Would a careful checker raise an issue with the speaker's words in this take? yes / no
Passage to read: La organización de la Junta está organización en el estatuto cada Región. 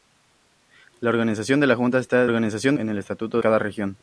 no